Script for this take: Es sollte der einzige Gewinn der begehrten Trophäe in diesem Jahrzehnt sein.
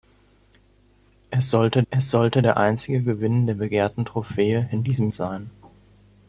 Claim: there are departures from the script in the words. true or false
true